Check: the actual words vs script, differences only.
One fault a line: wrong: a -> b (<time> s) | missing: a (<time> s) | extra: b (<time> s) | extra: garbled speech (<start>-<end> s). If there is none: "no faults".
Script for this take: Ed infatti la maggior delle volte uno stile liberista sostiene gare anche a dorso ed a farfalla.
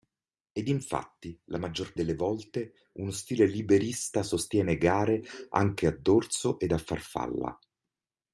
no faults